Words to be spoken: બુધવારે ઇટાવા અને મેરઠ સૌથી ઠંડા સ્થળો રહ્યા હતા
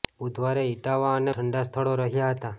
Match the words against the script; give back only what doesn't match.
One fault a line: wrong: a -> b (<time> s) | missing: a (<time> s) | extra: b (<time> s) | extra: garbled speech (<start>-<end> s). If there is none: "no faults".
missing: મેરઠ સૌથી (1.4 s)